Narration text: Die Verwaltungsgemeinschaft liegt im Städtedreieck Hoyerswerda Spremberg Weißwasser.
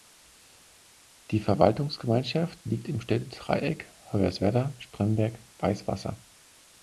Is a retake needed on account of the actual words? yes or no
no